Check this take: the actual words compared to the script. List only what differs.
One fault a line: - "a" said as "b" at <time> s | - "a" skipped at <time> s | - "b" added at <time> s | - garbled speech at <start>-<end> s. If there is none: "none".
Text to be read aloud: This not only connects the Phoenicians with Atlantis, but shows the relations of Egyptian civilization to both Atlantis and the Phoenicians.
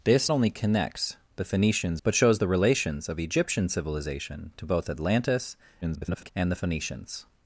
- "not" skipped at 0.3 s
- "with Atlantis" skipped at 2.0 s
- garbled speech at 5.8-6.3 s